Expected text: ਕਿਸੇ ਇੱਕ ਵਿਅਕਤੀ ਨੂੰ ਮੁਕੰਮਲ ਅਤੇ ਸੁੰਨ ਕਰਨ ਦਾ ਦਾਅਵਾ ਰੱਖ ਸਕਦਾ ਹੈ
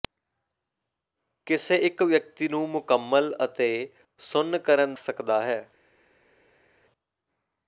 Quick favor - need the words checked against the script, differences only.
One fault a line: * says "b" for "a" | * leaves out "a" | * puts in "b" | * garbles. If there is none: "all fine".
* leaves out "ਦਾ ਦਾਅਵਾ ਰੱਖ"